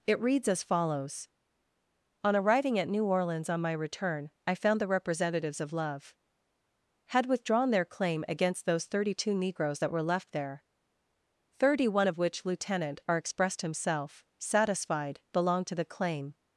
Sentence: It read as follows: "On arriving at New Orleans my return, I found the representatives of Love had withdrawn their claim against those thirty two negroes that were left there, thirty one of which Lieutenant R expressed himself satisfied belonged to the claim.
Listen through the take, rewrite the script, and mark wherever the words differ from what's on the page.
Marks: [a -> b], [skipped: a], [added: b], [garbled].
It [read -> reads] as follows: "On arriving at New Orleans [added: on] my return, I found the representatives of Love had withdrawn their claim against those thirty two negroes that were left there, thirty one of which Lieutenant R expressed himself satisfied belonged to the claim.